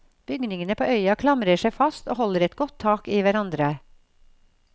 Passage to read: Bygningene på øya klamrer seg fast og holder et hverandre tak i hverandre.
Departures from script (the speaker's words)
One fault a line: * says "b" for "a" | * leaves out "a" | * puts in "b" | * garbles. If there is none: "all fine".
* says "godt" for "hverandre"